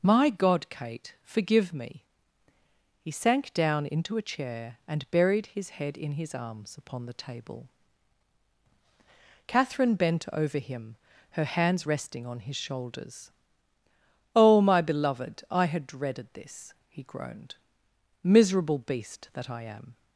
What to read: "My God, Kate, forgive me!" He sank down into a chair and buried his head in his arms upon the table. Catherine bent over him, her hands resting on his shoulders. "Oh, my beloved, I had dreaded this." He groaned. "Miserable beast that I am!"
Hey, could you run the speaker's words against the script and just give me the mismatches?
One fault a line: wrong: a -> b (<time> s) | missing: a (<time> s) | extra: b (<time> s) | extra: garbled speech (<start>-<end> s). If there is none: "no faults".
no faults